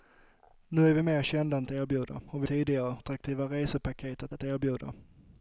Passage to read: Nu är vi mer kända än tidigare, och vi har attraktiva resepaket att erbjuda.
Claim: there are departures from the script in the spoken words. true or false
true